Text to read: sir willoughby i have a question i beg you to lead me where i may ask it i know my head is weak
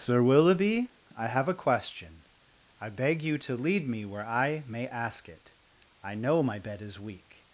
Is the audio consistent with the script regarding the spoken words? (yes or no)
no